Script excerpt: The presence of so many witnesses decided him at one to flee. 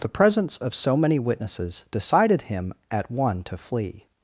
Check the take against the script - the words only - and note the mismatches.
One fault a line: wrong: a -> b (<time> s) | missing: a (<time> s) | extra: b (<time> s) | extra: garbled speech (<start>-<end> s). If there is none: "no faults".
no faults